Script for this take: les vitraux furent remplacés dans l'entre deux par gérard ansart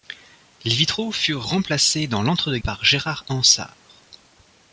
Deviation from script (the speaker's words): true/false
false